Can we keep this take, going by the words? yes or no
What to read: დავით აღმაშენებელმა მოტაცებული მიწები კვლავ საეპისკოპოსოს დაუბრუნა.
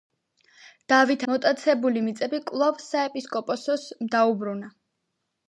no